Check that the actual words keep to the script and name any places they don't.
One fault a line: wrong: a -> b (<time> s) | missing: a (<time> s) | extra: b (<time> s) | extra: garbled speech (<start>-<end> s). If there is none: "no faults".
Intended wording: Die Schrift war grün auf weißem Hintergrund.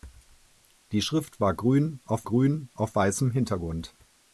extra: grün auf (2.2 s)